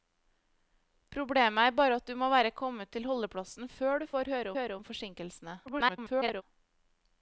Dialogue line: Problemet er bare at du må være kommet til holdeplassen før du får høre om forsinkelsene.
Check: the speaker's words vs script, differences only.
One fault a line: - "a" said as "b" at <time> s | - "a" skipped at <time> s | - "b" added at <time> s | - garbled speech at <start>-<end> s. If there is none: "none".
- "høre" added at 4.6 s
- garbled speech at 5.7-6.4 s